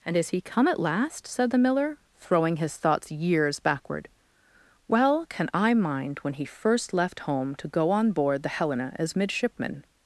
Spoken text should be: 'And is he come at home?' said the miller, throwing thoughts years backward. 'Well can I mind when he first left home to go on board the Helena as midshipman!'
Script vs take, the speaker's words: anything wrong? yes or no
yes